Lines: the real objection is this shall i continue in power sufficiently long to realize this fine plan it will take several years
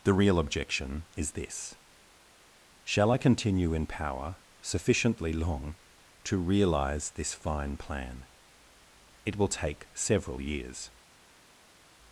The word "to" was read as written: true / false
true